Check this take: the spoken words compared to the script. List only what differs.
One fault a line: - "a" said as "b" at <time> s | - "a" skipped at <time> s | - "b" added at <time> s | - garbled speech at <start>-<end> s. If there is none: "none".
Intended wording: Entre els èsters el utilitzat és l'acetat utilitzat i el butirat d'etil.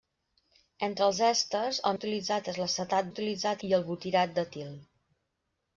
none